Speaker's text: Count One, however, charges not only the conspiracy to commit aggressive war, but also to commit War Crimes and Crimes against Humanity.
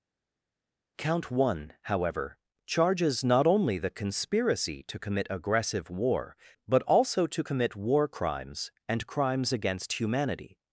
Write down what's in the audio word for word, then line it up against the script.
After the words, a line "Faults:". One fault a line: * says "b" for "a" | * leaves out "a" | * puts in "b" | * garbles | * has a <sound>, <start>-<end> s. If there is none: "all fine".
Count One, however, charges not only the conspiracy to commit aggressive war, but also to commit War Crimes and Crimes against Humanity.
Faults:
all fine